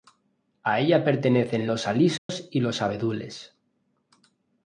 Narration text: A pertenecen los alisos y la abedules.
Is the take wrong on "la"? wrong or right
wrong